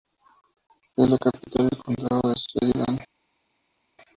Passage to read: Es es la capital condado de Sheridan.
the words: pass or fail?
fail